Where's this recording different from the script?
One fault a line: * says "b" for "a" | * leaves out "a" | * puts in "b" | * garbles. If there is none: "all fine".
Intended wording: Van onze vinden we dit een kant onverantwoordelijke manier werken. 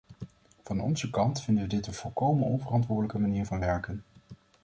* puts in "kant"
* says "volkomen" for "kant"
* puts in "van"